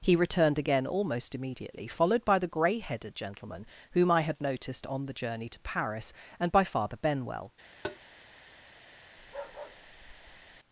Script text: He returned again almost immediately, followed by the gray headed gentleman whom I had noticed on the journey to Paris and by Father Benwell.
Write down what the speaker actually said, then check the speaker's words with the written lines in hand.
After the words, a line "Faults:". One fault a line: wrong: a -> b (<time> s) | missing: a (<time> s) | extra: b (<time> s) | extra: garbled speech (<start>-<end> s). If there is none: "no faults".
He returned again almost immediately, followed by the gray headed gentleman whom I had noticed on the journey to Paris and by Father Benwell.
Faults:
no faults